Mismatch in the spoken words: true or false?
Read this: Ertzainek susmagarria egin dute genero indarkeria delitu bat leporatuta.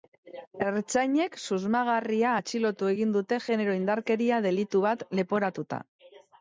true